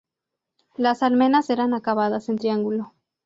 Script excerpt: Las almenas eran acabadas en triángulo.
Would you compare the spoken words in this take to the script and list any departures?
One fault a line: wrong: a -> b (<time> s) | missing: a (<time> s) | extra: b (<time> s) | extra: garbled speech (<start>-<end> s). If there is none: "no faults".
no faults